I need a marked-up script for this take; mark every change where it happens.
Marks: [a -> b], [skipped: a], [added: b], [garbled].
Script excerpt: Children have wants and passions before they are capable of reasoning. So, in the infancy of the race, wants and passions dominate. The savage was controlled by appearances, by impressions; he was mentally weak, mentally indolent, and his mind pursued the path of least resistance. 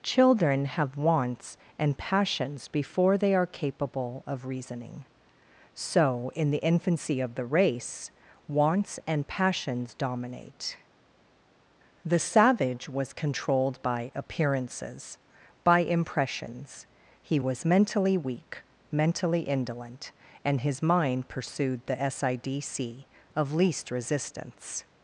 Children have wants and passions before they are capable of reasoning. So, in the infancy of the race, wants and passions dominate. The savage was controlled by appearances, by impressions; he was mentally weak, mentally indolent, and his mind pursued the [path -> sidc] of least resistance.